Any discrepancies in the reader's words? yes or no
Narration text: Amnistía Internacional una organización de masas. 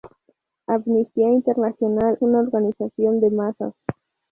no